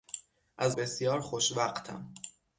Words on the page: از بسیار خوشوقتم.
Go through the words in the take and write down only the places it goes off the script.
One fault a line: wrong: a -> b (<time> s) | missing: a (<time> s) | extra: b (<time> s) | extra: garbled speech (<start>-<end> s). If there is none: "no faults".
no faults